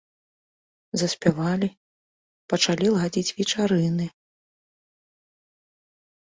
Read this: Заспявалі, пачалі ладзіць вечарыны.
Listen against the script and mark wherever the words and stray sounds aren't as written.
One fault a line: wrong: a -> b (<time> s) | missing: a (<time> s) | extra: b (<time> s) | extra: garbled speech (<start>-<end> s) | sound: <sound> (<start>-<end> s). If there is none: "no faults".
no faults